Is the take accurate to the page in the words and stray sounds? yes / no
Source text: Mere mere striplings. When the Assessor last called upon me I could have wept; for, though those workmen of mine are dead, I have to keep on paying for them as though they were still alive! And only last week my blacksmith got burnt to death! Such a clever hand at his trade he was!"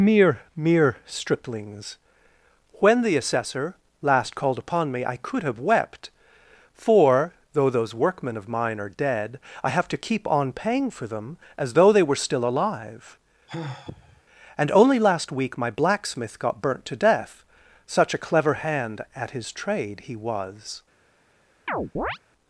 no